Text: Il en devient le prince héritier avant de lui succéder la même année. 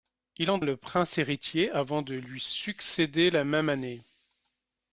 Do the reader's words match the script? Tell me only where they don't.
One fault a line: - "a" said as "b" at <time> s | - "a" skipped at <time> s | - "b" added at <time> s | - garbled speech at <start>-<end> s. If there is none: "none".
- "devient" skipped at 0.6 s